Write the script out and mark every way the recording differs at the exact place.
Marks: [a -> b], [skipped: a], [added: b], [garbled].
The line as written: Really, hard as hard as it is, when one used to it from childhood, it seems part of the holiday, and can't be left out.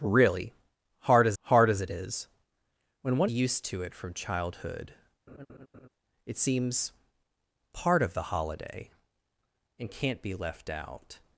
Really, hard as hard as it is, when one used to it from childhood, it seems part of the holiday, and can't be left out.